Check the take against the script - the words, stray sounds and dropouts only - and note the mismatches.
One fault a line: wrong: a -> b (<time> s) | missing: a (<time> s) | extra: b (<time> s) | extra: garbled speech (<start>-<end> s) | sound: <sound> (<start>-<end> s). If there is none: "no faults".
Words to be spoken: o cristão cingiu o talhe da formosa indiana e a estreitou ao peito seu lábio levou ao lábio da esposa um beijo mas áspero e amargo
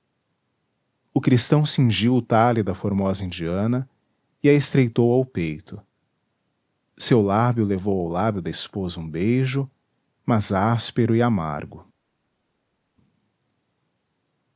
no faults